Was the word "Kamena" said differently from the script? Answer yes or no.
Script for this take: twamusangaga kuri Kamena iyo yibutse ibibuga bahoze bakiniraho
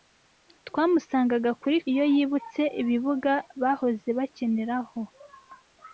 yes